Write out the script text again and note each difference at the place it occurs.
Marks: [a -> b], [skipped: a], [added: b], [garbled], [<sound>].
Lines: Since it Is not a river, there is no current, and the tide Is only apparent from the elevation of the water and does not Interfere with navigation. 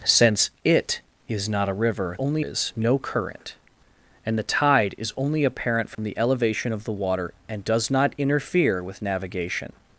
Since it Is not a river, [there -> only] is no current, and the tide Is only apparent from [dropout] the elevation of the water and does not Interfere with navigation.